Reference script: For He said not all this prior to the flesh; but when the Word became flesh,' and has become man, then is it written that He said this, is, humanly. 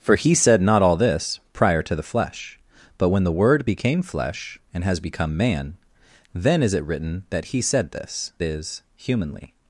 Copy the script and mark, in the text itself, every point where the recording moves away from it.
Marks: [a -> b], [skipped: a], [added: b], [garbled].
For He said not all this prior to the flesh; but when the Word became flesh,' and has become man, then is it written that He said this, is, humanly.